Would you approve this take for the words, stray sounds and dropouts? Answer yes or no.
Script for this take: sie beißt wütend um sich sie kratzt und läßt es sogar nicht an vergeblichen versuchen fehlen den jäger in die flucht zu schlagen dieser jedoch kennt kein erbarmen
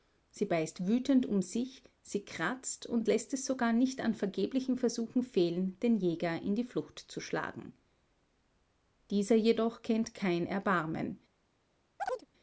no